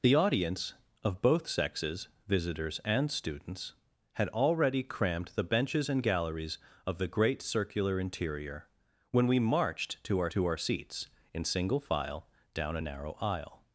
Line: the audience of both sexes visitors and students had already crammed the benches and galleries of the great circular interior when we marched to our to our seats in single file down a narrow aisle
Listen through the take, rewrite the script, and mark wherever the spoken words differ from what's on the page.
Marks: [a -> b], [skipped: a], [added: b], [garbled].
the audience of both sexes visitors and students had already crammed the benches and galleries of the great circular interior when we marched to our to our seats in single file down a narrow aisle